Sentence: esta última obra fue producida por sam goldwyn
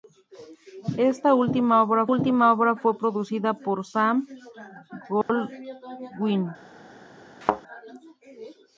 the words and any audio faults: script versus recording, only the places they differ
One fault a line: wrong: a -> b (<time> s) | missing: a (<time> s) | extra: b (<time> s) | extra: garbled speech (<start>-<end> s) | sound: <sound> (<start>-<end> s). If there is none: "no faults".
extra: última obra (2.1 s)
sound: dropout (5.2-5.3 s)
sound: thud (7.4-7.6 s)